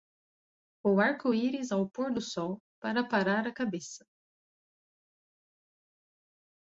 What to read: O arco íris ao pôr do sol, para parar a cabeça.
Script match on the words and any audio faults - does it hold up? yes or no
yes